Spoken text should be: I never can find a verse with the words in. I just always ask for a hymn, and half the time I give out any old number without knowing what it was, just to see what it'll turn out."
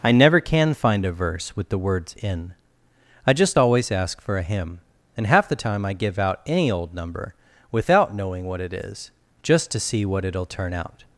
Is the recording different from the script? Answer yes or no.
yes